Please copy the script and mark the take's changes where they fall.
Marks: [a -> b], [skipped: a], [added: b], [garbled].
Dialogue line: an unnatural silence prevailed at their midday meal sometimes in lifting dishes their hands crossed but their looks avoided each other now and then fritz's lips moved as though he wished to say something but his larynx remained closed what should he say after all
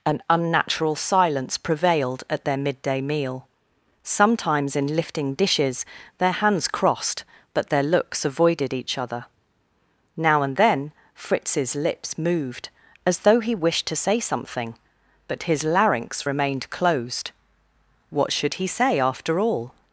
an unnatural silence prevailed at their midday meal sometimes in lifting dishes their hands crossed but their looks avoided each other now and then fritz's lips moved as though he wished to say something but his larynx remained closed what should he say after all